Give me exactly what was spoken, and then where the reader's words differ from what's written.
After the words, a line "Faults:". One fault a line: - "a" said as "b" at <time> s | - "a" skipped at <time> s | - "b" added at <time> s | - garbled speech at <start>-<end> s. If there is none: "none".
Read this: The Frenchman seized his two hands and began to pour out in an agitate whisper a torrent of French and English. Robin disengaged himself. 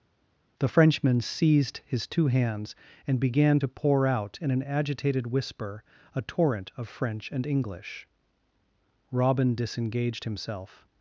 The Frenchman seized his two hands and began to pour out in an agitated whisper a torrent of French and English. Robin disengaged himself.
Faults:
- "agitate" said as "agitated" at 4.6 s